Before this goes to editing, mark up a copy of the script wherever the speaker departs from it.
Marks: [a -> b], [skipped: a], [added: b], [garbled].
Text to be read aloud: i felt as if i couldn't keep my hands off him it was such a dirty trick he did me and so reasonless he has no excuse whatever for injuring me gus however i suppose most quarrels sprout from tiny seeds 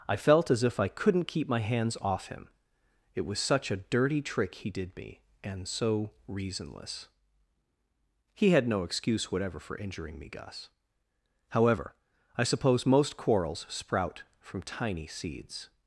i felt as if i couldn't keep my hands off him it was such a dirty trick he did me and so reasonless he [has -> had] no excuse whatever for injuring me gus however i suppose most quarrels sprout from tiny seeds